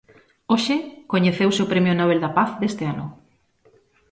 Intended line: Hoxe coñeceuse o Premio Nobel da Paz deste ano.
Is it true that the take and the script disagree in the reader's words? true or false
false